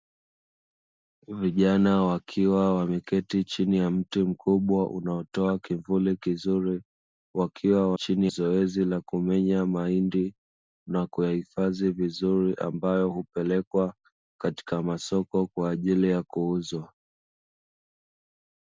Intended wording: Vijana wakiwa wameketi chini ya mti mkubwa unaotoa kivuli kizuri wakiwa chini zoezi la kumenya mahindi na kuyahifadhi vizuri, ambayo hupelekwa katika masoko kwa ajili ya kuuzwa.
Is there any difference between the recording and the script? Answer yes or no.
no